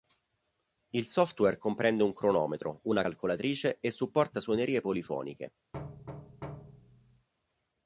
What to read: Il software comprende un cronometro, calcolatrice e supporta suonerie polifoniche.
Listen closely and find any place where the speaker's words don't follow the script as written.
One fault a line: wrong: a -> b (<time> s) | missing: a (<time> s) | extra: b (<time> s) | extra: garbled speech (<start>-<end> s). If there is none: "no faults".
extra: una (2.9 s)